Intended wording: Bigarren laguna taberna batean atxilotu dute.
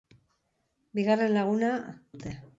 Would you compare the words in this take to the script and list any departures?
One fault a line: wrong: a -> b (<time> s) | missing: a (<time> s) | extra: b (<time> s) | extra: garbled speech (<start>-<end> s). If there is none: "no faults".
missing: taberna batean atxilotu (1.7 s)